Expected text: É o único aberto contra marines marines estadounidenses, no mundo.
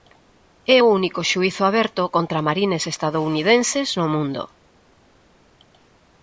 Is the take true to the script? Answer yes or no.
no